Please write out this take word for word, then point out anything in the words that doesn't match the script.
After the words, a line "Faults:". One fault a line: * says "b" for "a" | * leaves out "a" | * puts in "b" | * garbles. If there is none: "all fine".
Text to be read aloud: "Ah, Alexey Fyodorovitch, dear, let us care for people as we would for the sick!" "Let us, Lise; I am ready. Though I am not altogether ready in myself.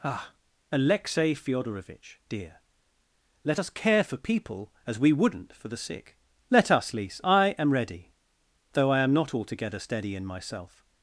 "Ah, Alexey Fyodorovitch, dear, let us care for people as we wouldn't for the sick!" "Let us, Lise; I am ready. Though I am not altogether steady in myself.
Faults:
* says "wouldn't" for "would"
* says "steady" for "ready"